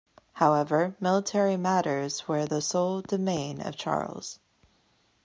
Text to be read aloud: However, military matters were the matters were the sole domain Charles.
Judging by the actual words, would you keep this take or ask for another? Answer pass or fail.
fail